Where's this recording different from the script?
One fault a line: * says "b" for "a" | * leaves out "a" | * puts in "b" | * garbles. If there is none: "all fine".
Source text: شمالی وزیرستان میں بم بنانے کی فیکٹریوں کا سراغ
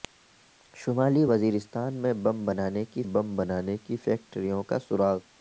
* puts in "بم بنانے کی"